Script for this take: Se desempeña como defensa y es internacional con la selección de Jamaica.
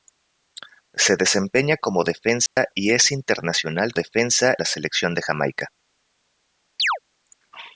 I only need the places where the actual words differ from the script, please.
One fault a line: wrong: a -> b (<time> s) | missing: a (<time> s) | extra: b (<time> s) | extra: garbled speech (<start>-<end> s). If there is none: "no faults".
wrong: con -> defensa (3.9 s)